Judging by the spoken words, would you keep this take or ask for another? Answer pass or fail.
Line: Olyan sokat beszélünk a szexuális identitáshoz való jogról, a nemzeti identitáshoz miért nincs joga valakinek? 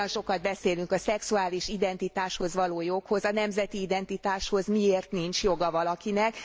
pass